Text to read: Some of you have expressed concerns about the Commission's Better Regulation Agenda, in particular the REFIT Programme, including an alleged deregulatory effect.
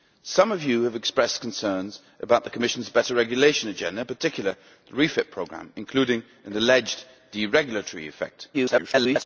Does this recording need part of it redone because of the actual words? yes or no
yes